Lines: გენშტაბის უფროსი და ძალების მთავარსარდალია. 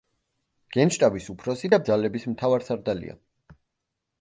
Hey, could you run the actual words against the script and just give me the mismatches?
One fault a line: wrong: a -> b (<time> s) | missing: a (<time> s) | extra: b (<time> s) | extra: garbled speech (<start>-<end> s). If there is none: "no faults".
no faults